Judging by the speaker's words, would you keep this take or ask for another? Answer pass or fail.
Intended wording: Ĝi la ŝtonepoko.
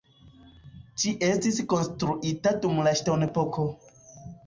fail